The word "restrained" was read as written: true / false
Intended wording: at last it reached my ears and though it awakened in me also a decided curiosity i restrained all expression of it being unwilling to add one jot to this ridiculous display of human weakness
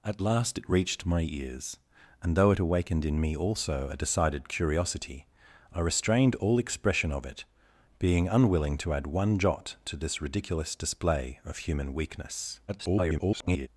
true